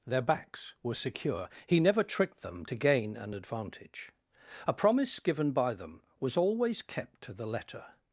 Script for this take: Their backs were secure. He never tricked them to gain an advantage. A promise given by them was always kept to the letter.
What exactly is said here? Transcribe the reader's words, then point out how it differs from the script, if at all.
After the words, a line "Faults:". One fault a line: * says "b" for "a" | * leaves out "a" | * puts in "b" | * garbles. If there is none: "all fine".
Their backs were secure. He never tricked them to gain an advantage. A promise given by them was always kept to the letter.
Faults:
all fine